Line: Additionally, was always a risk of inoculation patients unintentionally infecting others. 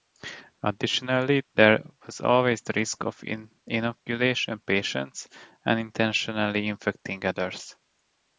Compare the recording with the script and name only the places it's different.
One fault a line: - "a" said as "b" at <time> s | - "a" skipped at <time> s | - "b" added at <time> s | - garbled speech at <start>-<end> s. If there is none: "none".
- "there" added at 1.5 s
- "a" said as "the" at 2.6 s